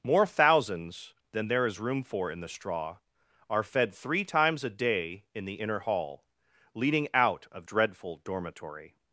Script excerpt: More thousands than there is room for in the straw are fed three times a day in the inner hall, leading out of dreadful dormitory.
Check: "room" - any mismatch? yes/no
no